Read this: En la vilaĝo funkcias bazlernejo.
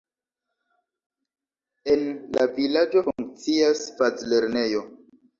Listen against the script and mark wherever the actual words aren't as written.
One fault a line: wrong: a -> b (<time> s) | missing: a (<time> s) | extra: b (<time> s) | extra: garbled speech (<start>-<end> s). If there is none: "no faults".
no faults